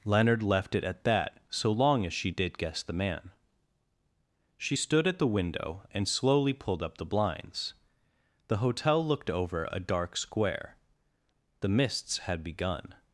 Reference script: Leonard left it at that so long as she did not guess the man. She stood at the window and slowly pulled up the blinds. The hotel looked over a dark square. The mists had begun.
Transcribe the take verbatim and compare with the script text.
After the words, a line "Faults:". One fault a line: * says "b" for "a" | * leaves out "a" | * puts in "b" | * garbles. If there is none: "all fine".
Leonard left it at that so long as she did guess the man. She stood at the window and slowly pulled up the blinds. The hotel looked over a dark square. The mists had begun.
Faults:
* leaves out "not"